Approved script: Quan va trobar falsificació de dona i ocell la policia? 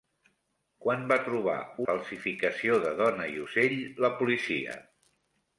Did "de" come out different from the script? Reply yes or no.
no